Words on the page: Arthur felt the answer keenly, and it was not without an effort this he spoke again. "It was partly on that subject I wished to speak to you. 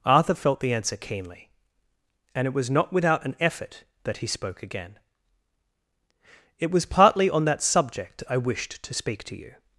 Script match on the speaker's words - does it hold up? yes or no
no